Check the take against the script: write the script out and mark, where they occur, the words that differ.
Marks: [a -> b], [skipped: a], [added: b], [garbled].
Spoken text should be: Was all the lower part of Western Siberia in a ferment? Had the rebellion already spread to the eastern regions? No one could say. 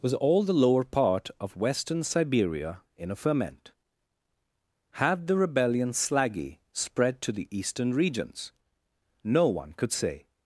Was all the lower part of Western Siberia in a ferment? Had the rebellion [already -> slaggy] spread to the eastern regions? No one could say.